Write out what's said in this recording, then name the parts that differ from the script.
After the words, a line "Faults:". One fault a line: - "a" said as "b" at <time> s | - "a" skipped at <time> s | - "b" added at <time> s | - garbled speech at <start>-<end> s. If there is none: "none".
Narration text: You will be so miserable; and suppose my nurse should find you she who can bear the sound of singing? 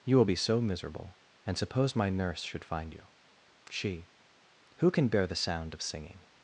You will be so miserable; and suppose my nurse should find you she who can bear the sound of singing?
Faults:
none